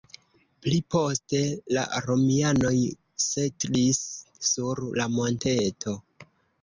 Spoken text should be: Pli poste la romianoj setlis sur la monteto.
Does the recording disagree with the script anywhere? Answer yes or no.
no